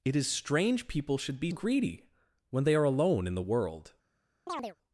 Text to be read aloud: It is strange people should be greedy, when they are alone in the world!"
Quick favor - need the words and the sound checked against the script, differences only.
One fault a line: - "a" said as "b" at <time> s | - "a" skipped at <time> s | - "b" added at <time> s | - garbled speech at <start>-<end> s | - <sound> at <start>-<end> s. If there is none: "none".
- chirp at 4.5-4.8 s